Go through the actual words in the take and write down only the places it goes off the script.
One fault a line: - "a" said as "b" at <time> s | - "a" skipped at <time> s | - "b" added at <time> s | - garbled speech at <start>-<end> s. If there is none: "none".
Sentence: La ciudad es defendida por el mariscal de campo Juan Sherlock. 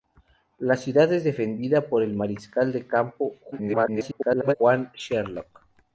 - garbled speech at 3.5-4.6 s